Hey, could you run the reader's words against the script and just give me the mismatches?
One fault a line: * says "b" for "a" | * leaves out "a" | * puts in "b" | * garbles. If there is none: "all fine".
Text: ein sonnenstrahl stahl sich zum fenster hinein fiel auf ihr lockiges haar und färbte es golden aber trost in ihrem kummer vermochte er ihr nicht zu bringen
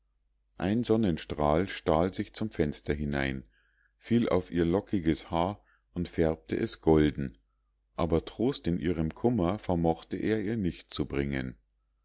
all fine